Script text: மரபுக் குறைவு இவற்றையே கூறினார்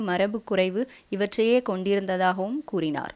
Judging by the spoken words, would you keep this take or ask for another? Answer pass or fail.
fail